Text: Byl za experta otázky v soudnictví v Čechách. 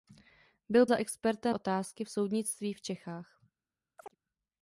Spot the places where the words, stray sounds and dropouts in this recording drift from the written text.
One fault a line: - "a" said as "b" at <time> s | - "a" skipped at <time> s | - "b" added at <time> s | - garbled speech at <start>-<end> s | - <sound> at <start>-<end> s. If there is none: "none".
- chirp at 4.0-4.2 s